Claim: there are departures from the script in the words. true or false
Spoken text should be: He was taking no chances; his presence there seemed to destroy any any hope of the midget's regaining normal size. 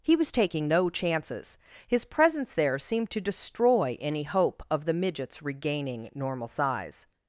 true